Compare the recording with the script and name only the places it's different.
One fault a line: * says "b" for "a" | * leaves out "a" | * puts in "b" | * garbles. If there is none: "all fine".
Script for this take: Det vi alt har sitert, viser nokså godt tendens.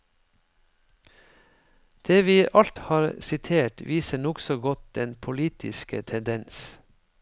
* puts in "den politiske"